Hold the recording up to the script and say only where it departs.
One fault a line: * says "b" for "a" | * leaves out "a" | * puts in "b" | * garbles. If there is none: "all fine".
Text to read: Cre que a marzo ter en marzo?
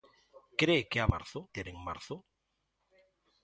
all fine